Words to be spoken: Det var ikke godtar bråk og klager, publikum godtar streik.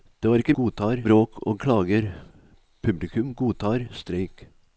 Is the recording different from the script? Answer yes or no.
no